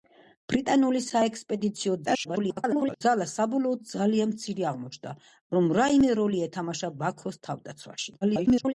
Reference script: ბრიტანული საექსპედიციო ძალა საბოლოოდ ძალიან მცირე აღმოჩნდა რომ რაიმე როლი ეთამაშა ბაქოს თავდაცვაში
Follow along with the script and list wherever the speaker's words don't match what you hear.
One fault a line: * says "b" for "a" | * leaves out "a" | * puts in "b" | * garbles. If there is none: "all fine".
* garbles
* garbles